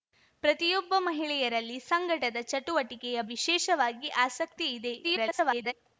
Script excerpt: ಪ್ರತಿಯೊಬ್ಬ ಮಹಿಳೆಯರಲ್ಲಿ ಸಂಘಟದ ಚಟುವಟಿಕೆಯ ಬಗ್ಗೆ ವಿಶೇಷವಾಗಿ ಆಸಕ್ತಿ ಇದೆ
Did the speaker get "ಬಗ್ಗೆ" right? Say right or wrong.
wrong